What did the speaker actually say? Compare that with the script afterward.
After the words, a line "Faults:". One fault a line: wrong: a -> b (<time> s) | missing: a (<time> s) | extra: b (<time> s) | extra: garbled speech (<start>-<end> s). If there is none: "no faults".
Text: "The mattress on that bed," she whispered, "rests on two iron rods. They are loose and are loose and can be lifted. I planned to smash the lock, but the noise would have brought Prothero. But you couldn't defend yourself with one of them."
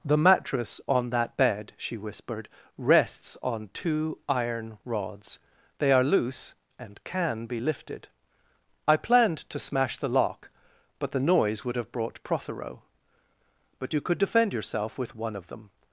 "The mattress on that bed," she whispered, "rests on two iron rods. They are loose and can be lifted. I planned to smash the lock, but the noise would have brought Prothero. But you could defend yourself with one of them."
Faults:
missing: are loose and (7.0 s)
wrong: couldn't -> could (14.0 s)